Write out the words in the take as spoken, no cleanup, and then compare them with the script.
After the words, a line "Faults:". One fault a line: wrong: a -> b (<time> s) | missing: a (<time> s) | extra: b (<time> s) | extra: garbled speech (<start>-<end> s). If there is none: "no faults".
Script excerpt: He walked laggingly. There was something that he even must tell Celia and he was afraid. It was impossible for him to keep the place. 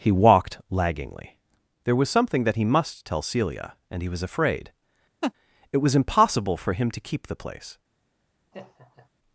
He walked laggingly. There was something that he must tell Celia and he was afraid. It was impossible for him to keep the place.
Faults:
missing: even (2.6 s)